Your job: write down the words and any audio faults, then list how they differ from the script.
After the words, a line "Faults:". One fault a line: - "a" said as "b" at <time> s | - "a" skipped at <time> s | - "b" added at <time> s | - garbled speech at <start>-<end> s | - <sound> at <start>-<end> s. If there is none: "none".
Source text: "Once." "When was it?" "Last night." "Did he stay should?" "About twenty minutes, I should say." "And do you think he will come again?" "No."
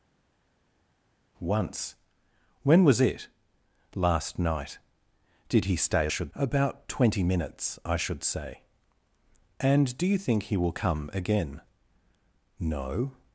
"Once." "When was it?" "Last night." "Did he stay should?" "About twenty minutes, I should say." "And do you think he will come again?" "No."
Faults:
none